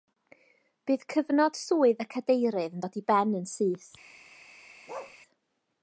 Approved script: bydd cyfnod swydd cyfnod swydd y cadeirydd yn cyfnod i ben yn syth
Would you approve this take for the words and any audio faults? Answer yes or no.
no